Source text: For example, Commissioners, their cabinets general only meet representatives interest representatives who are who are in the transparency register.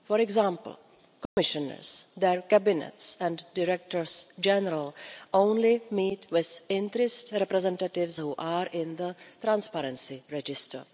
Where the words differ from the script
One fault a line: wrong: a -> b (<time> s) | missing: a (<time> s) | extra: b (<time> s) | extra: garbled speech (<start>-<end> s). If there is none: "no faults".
extra: and directors (3.2 s)
wrong: representatives -> with (6.3 s)
missing: who are (8.7 s)